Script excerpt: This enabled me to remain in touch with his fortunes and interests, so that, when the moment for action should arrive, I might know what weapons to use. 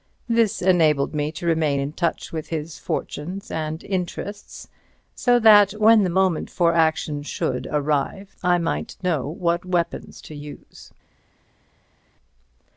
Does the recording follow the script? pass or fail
pass